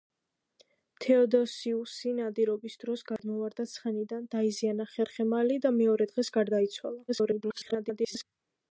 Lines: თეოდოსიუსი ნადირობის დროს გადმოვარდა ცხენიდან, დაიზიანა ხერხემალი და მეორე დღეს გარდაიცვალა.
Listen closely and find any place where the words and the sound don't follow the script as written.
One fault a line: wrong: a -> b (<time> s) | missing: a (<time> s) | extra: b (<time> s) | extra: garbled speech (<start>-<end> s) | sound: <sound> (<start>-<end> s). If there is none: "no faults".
sound: dropout (3.2-3.2 s)
extra: garbled speech (7.1-8.2 s)